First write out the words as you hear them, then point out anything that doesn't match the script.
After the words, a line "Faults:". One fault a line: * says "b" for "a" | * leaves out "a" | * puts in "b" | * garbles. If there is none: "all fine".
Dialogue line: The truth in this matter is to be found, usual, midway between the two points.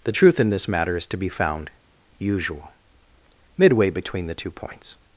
The truth in this matter is to be found, usual, midway between the two points.
Faults:
all fine